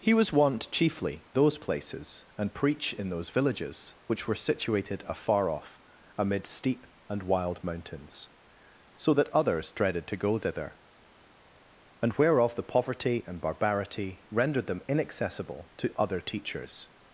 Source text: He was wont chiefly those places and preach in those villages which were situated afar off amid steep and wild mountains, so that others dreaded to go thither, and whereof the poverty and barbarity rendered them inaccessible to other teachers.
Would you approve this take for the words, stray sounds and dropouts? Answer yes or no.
yes